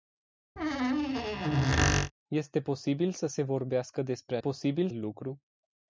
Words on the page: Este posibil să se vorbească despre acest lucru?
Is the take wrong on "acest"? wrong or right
wrong